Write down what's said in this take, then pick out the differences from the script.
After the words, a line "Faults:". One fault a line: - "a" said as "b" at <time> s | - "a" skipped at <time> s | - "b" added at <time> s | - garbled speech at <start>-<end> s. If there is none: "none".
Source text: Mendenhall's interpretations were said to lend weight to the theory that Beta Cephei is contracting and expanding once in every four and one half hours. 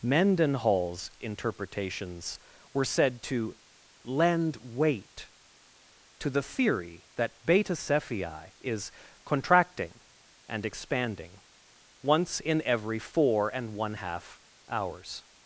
Mendenhall's interpretations were said to lend weight to the theory that Beta Cephei is contracting and expanding once in every four and one half hours.
Faults:
none